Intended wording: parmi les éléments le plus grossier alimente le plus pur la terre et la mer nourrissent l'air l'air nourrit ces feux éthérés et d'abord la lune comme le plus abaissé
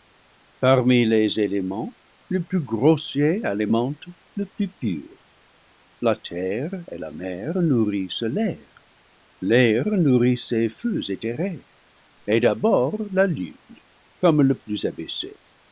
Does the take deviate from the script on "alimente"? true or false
false